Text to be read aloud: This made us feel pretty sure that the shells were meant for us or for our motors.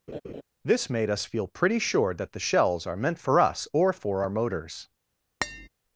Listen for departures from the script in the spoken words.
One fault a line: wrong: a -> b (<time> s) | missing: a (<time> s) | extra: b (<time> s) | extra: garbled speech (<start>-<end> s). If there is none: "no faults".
wrong: were -> are (2.8 s)